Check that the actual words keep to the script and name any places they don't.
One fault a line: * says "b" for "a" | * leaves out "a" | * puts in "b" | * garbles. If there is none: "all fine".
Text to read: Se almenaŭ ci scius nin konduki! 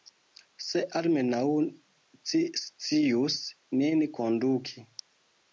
all fine